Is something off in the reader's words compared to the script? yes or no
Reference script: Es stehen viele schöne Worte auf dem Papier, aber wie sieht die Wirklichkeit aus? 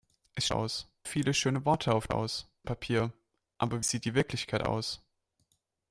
yes